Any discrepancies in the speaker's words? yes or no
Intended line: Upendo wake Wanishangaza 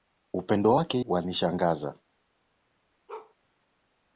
no